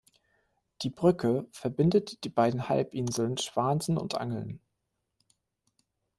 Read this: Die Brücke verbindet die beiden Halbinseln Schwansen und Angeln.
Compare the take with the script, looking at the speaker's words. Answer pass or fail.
pass